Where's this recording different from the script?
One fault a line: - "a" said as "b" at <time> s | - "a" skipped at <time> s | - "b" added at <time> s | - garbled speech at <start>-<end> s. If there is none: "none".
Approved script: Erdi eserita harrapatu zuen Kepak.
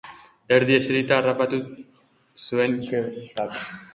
none